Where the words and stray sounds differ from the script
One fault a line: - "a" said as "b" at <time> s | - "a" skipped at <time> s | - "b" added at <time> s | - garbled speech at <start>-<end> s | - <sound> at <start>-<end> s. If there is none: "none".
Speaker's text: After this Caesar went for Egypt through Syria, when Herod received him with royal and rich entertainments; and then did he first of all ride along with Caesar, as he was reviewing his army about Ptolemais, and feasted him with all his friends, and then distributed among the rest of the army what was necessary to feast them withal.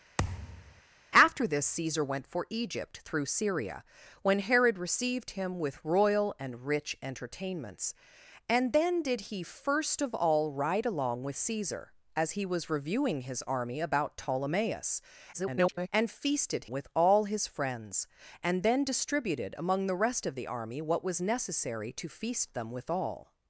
- thud at 0.2-0.8 s
- garbled speech at 15.3-15.9 s
- "him" skipped at 16.7 s